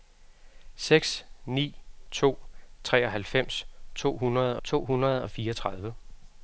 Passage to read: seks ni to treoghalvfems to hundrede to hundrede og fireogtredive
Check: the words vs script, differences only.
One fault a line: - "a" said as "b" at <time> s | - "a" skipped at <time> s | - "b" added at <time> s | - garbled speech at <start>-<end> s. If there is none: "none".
none